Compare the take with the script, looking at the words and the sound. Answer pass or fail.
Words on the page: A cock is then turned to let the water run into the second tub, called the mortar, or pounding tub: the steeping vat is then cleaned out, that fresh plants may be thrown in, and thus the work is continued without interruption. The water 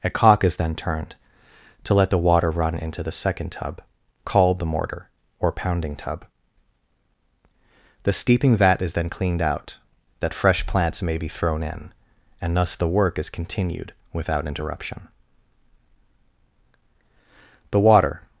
pass